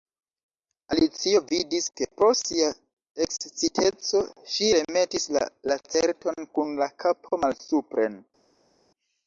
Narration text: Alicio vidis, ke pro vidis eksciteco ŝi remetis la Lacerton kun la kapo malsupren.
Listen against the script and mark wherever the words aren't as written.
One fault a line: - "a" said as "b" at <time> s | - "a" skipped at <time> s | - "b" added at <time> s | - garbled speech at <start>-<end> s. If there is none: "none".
- "vidis" said as "sia" at 2.4 s